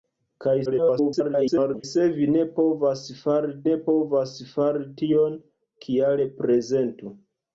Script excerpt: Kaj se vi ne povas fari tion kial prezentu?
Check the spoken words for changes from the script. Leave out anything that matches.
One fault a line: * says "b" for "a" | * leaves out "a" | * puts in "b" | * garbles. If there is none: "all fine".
* garbles
* puts in "ne povas fari"